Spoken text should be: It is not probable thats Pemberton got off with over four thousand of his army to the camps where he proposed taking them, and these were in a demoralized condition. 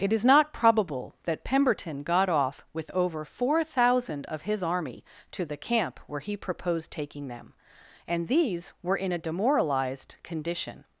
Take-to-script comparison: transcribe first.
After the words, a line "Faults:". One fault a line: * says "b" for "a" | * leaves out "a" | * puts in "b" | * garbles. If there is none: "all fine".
It is not probable that Pemberton got off with over four thousand of his army to the camp where he proposed taking them, and these were in a demoralized condition.
Faults:
* says "that" for "thats"
* says "camp" for "camps"